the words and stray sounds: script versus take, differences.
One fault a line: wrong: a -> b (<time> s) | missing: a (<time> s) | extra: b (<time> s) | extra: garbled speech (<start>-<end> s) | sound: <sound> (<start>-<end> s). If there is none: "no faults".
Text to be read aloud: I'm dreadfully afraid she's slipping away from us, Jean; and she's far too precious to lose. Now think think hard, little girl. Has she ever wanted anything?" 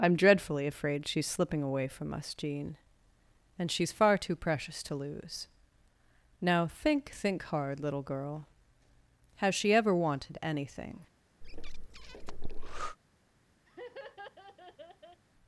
sound: breath (11.4-13.0 s)
sound: laugh (13.7-15.2 s)